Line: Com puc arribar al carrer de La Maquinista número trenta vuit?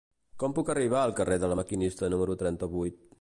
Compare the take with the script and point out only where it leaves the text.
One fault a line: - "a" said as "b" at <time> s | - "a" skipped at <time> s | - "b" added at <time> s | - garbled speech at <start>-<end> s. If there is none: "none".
none